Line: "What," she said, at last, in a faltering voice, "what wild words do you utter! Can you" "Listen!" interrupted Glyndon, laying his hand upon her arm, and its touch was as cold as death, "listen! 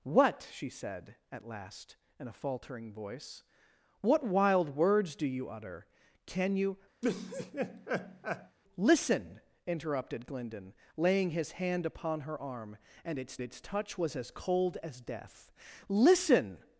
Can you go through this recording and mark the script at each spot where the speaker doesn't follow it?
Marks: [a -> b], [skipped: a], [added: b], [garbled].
"What," she said, at last, in a faltering voice, "what wild words do you utter! Can you" "Listen!" interrupted Glyndon, laying his hand upon her arm, and its [added: its] touch was as cold as death, "listen!